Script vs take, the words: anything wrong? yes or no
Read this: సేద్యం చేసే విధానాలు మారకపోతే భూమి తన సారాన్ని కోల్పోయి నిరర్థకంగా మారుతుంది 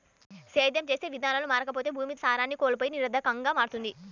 yes